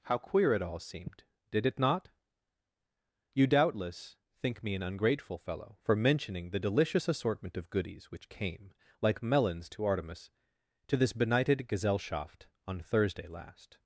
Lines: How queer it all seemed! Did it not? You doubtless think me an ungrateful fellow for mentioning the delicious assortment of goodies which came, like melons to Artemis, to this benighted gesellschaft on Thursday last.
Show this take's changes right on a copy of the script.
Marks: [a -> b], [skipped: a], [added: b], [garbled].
How queer it all seemed! Did it not? You doubtless think me an ungrateful fellow for mentioning the delicious assortment of goodies which came, like melons to Artemis, to this benighted gesellschaft on Thursday last.